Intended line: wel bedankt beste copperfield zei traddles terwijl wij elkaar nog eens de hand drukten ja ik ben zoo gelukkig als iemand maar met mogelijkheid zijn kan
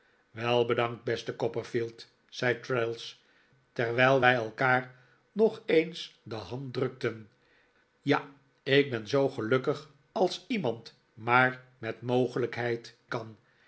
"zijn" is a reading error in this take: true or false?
true